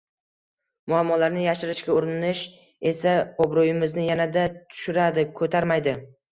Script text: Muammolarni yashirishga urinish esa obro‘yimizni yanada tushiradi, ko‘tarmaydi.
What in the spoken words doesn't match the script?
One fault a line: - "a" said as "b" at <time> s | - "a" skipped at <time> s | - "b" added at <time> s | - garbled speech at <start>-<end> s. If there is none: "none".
none